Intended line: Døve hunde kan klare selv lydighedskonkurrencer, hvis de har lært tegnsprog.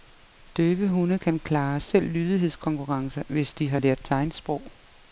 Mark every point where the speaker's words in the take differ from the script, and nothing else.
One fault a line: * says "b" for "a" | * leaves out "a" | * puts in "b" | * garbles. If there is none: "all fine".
all fine